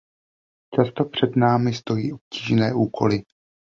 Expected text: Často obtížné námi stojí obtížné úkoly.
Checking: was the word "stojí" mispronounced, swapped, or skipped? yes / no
no